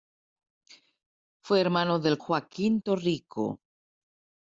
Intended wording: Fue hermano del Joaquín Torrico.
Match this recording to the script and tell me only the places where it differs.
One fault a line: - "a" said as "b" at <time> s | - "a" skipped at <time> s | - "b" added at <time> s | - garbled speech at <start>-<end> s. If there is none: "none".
none